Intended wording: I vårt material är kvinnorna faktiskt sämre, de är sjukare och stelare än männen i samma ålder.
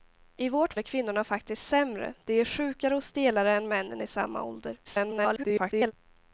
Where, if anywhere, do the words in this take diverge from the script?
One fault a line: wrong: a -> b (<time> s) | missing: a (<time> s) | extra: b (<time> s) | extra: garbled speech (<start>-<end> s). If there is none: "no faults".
missing: material (0.8 s)
extra: garbled speech (4.8-5.9 s)